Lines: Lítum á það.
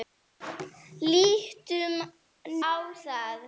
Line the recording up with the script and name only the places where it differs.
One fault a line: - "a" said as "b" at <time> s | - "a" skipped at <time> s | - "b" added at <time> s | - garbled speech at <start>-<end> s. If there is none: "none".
none